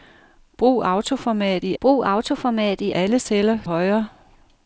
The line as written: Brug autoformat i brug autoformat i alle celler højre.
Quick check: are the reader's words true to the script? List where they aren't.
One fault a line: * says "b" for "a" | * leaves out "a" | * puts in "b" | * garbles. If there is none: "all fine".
all fine